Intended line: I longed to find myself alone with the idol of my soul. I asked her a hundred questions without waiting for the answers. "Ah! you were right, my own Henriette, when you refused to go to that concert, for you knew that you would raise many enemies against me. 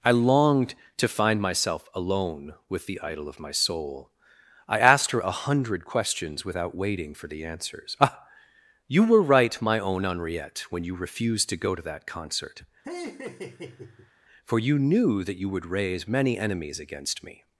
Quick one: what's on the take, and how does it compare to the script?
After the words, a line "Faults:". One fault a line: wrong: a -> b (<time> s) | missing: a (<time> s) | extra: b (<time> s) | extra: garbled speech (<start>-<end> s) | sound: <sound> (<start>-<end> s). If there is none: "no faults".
I longed to find myself alone with the idol of my soul. I asked her a hundred questions without waiting for the answers. "Ah! you were right, my own Henriette, when you refused to go to that concert, for you knew that you would raise many enemies against me.
Faults:
sound: laugh (12.8-14.1 s)